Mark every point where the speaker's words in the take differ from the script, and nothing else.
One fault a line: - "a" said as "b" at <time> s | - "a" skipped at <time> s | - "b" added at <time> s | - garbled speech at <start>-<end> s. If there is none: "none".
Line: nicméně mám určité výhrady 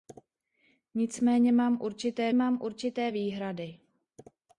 - "mám určité" added at 2.3 s